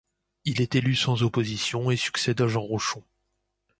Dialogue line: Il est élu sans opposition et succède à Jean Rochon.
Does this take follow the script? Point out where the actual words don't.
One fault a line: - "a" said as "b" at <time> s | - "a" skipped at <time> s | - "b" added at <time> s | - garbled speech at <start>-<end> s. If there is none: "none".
none